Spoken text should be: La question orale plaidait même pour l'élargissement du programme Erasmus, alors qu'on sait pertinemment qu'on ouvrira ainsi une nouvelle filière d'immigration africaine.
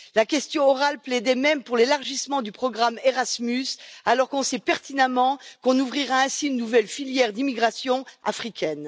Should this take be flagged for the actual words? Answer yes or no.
no